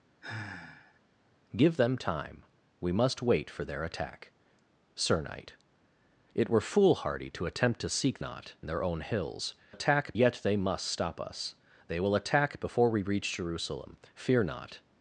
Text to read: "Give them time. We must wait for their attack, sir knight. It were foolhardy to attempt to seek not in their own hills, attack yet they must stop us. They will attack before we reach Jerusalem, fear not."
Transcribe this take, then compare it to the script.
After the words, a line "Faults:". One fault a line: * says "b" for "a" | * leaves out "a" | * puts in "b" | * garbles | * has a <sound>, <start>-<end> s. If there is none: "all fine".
"Give them time. We must wait for their attack, sir knight. It were foolhardy to attempt to seek not in their own hills, attack yet they must stop us. They will attack before we reach Jerusalem, fear not."
Faults:
* has a sigh, 0.2-1.0 s